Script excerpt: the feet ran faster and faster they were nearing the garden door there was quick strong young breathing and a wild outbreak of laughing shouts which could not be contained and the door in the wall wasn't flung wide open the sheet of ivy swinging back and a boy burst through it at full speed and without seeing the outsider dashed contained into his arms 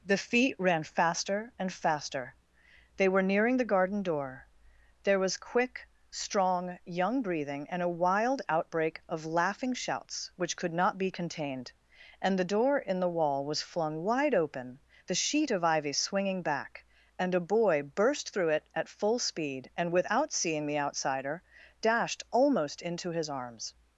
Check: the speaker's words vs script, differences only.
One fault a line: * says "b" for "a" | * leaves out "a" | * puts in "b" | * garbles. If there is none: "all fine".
* says "was" for "wasn't"
* says "almost" for "contained"